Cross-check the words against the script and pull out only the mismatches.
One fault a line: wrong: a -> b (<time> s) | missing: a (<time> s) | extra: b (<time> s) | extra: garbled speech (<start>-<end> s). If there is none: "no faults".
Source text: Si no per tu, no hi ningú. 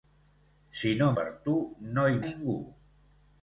no faults